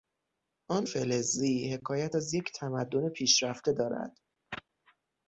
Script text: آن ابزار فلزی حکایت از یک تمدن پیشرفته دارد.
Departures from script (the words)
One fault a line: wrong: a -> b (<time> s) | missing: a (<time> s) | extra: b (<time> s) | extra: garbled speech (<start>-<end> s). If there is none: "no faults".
missing: ابزار (0.9 s)